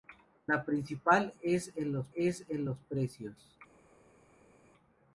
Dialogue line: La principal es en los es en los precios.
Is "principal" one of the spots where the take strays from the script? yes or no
no